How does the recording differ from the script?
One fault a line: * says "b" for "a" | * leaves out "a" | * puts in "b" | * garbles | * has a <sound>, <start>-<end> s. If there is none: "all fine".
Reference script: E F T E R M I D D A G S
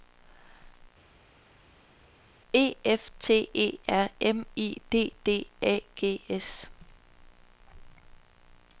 all fine